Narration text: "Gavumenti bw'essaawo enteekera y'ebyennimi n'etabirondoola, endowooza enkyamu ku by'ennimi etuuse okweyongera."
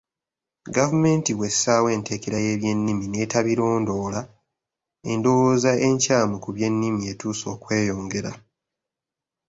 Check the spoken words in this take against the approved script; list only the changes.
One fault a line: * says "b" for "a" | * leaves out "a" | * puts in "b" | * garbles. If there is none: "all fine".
all fine